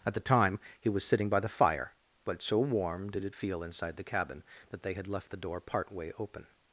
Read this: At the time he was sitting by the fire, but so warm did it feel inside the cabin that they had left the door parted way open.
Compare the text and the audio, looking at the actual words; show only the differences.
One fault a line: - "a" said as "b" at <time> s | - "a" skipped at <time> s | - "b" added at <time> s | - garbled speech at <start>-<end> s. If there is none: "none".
- "parted" said as "part" at 5.6 s